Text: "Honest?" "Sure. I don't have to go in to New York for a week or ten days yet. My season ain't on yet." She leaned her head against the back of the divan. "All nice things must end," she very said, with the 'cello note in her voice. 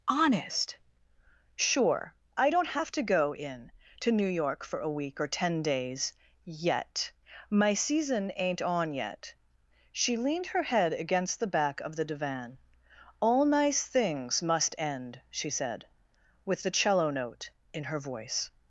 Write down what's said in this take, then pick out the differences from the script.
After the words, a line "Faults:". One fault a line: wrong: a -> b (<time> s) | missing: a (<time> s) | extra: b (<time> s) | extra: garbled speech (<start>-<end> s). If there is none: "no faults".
"Honest?" "Sure. I don't have to go in to New York for a week or ten days yet. My season ain't on yet." She leaned her head against the back of the divan. "All nice things must end," she said, with the 'cello note in her voice.
Faults:
missing: very (15.5 s)